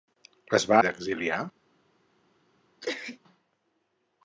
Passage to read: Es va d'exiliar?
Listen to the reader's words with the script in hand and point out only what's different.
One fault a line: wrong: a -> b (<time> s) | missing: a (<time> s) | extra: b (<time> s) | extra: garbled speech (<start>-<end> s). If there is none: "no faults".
no faults